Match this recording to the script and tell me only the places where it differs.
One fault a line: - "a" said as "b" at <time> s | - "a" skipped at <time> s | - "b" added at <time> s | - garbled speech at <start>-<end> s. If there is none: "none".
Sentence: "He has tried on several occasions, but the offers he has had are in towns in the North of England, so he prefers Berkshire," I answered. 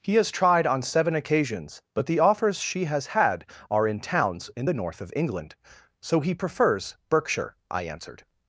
- "several" said as "seven" at 0.8 s
- "he" said as "she" at 2.6 s